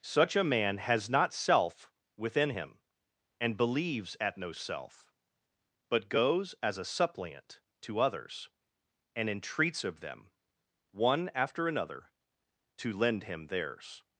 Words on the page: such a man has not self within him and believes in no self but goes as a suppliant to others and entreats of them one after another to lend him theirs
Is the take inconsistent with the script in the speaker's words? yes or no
yes